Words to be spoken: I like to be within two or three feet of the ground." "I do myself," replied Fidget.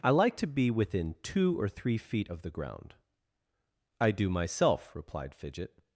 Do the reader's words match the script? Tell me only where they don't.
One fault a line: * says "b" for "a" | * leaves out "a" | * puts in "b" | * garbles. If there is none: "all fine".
all fine